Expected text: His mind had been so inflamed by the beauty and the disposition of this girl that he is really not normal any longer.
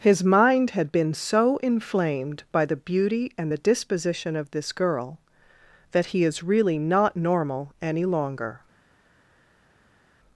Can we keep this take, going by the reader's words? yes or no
yes